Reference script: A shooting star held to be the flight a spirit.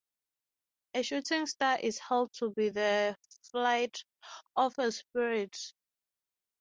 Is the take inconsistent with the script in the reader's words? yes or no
yes